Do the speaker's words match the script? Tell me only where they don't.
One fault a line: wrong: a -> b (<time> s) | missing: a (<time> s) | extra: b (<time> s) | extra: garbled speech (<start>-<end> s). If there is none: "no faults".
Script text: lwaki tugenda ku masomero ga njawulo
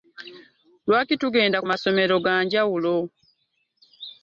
no faults